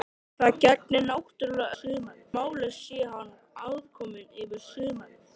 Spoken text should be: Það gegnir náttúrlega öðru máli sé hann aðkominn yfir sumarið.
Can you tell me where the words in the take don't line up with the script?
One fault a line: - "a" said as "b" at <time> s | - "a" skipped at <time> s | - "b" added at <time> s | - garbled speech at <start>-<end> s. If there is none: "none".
- "öðru" said as "sumarið" at 1.8 s